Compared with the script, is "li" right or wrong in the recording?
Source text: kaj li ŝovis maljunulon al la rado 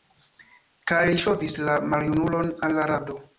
right